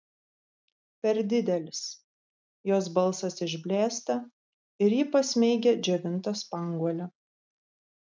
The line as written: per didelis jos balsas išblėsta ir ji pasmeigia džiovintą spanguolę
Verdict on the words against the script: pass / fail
pass